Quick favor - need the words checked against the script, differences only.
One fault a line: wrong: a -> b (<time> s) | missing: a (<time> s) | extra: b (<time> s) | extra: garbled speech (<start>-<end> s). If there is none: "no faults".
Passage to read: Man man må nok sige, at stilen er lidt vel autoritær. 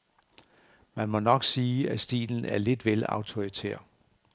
missing: man (1.1 s)